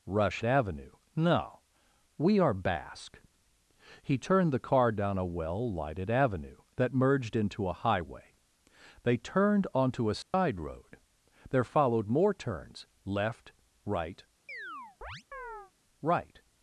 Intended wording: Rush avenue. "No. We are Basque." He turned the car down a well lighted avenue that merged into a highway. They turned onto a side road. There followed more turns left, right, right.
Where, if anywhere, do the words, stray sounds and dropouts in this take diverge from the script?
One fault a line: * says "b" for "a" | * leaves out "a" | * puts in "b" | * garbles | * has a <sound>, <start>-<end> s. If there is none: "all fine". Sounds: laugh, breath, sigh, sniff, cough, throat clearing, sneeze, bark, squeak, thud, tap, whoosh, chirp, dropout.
* has a dropout, 10.2-10.3 s
* has a chirp, 14.5-15.7 s